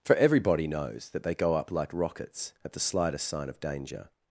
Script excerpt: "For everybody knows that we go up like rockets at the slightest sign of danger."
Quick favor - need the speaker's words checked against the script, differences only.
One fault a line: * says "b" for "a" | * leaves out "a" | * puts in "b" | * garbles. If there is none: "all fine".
* says "they" for "we"